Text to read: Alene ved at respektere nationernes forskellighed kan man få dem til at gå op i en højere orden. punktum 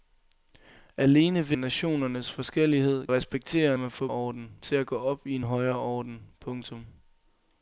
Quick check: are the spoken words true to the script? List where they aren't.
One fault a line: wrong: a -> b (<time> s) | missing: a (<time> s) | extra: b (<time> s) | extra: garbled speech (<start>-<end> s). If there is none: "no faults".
missing: at respektere (1.6 s)
wrong: kan -> respektere (3.1 s)
wrong: dem -> orden (4.1 s)